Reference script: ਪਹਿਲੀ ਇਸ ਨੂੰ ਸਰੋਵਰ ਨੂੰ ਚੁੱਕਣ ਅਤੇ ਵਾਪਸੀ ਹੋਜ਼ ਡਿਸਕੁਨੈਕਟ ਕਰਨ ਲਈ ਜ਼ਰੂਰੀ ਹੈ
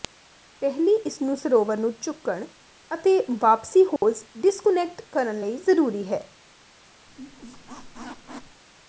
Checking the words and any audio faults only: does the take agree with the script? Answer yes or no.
no